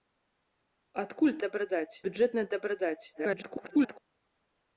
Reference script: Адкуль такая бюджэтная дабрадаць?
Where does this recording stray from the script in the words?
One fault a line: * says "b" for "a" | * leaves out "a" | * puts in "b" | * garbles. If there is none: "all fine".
* says "дабрадаць" for "такая"
* garbles